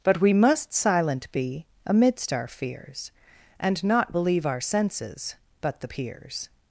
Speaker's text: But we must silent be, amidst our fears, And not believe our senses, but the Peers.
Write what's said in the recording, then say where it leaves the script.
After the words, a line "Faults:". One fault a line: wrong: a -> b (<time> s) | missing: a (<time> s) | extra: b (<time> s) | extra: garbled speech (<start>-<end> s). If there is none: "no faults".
But we must silent be, amidst our fears, And not believe our senses, but the Peers.
Faults:
no faults